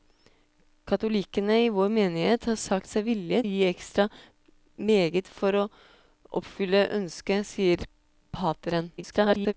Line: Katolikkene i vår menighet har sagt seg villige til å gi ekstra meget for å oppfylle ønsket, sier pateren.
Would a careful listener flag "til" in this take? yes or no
yes